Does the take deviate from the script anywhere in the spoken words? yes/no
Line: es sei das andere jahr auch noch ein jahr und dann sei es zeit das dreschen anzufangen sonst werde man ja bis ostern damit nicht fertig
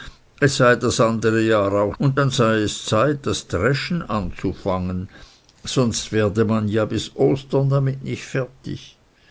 yes